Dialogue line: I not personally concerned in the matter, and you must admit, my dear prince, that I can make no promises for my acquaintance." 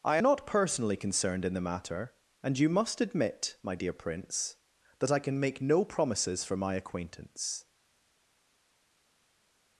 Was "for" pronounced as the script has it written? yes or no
yes